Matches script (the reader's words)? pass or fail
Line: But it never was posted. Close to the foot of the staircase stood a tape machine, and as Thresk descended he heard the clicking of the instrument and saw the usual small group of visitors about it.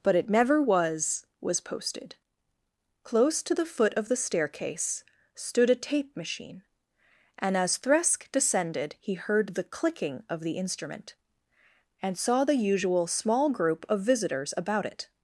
fail